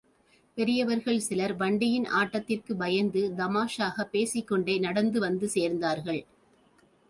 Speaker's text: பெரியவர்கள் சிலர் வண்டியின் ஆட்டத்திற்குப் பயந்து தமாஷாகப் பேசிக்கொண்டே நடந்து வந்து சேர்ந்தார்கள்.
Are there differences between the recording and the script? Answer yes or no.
no